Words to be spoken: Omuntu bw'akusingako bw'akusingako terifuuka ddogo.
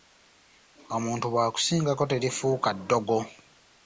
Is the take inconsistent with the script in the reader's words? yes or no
yes